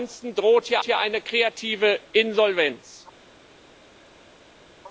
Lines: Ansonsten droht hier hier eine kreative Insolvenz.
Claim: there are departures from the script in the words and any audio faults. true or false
false